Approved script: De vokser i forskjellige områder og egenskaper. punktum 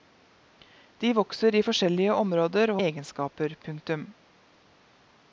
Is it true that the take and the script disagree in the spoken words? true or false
false